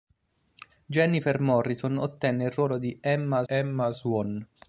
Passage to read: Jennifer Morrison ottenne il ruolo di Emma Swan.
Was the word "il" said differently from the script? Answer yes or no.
no